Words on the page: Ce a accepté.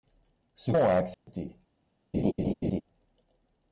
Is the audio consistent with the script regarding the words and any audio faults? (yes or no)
no